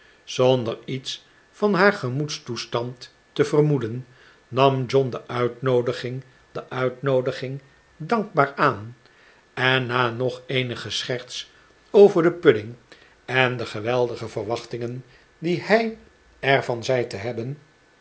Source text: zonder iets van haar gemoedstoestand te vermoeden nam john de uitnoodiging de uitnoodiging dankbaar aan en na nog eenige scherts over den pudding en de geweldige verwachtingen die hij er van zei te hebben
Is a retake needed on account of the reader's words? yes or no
no